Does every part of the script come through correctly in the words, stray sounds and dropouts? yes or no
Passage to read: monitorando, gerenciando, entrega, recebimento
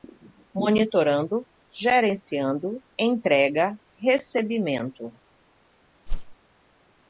no